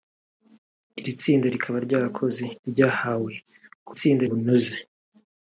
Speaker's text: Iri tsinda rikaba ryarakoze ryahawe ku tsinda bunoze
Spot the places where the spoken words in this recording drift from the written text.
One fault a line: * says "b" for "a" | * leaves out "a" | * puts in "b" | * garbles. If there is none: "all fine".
all fine